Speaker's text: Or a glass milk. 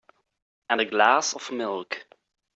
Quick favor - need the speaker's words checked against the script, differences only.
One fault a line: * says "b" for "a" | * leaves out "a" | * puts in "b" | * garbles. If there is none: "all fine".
* says "And" for "Or"
* puts in "of"